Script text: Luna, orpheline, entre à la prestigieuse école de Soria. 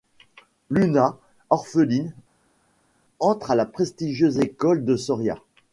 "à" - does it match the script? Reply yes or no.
yes